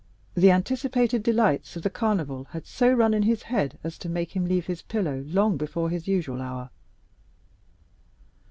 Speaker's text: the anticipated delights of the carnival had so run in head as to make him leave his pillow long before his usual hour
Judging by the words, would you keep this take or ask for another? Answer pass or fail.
fail